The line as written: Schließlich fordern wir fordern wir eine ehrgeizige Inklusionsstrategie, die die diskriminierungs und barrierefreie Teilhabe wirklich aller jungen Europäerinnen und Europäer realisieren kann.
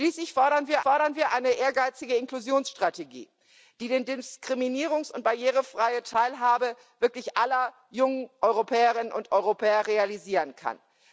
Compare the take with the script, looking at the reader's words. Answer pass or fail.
pass